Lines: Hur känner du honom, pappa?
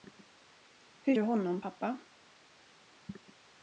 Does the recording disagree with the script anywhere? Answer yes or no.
yes